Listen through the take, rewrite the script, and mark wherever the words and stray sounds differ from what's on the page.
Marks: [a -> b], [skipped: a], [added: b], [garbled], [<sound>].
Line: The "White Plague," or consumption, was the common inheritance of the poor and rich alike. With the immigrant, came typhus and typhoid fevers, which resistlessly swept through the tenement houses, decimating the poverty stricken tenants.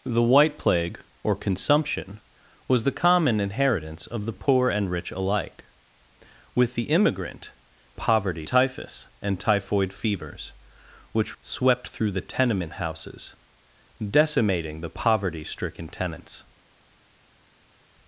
The "White Plague," or consumption, was the common inheritance of the poor and rich alike. With the immigrant, [came -> poverty] typhus and typhoid fevers, which [skipped: resistlessly] swept through the tenement houses, decimating the poverty stricken tenants.